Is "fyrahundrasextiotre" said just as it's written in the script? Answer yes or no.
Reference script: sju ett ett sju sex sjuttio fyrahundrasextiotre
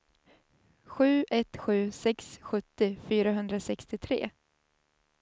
yes